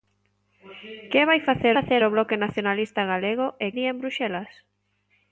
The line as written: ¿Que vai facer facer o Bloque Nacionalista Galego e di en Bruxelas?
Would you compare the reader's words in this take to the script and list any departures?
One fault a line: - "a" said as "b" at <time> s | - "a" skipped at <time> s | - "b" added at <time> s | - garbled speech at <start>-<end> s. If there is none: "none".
none